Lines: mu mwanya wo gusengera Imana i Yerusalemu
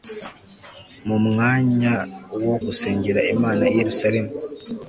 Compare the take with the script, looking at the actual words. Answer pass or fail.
pass